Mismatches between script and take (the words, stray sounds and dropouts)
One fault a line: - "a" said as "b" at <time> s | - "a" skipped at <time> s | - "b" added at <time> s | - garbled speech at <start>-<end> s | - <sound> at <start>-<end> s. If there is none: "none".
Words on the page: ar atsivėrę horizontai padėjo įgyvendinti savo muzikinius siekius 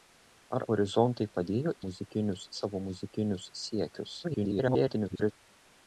- "atsivėrę" skipped at 0.6 s
- "įgyvendinti" said as "muzikinius" at 1.9 s
- garbled speech at 4.2-5.3 s